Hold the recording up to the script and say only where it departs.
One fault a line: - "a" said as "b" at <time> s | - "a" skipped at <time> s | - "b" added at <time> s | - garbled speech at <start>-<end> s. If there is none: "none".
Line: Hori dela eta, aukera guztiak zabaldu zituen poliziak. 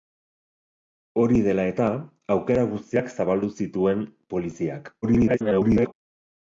- garbled speech at 5.0-5.9 s